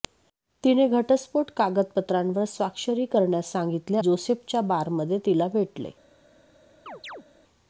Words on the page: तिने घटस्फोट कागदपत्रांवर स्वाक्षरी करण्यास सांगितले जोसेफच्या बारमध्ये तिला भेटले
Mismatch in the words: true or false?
false